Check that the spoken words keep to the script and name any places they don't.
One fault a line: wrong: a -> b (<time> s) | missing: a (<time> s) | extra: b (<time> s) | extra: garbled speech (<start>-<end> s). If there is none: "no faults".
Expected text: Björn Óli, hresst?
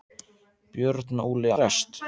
no faults